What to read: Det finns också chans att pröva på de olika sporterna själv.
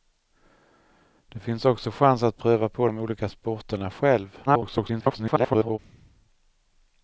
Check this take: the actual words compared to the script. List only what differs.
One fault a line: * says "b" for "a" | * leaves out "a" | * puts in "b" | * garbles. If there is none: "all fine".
* garbles